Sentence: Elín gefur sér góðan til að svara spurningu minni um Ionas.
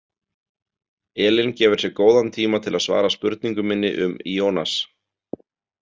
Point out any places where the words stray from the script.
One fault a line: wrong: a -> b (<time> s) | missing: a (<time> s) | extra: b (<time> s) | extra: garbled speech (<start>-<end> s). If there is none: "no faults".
extra: tíma (2.4 s)